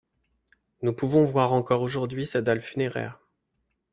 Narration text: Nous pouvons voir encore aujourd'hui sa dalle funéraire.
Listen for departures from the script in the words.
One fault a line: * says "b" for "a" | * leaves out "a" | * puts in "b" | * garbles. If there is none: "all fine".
all fine